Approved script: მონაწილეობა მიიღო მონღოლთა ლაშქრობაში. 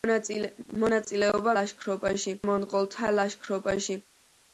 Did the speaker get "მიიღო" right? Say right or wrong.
wrong